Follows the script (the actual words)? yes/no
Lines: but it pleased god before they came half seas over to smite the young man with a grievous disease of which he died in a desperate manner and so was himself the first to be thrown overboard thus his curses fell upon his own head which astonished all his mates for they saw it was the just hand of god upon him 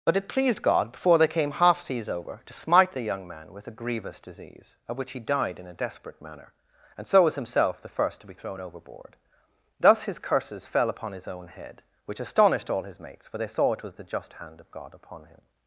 yes